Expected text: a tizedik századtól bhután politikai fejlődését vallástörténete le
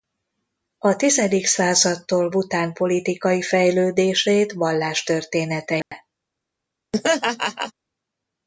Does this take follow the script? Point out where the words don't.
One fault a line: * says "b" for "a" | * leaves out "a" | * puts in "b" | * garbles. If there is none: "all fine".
all fine